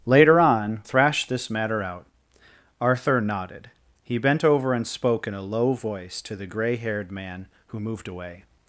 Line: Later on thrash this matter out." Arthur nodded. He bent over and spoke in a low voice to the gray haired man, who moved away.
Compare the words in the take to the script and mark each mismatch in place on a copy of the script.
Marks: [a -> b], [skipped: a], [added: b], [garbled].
Later on thrash this matter out." Arthur nodded. He bent over and spoke in a low voice to the gray haired man, who moved away.